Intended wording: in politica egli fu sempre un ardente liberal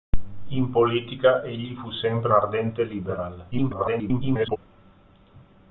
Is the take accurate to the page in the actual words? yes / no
no